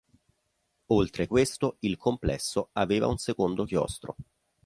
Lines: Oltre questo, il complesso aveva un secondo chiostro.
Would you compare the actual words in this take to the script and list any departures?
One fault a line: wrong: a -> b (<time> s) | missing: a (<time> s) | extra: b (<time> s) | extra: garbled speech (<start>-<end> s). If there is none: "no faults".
no faults